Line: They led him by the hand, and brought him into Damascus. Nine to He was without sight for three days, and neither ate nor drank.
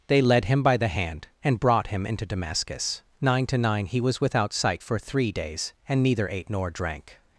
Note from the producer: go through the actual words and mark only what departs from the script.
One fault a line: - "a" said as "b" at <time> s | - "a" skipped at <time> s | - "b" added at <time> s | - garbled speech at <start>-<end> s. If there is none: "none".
- "nine" added at 3.6 s